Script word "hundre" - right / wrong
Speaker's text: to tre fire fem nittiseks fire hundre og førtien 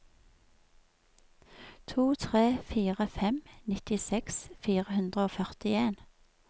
right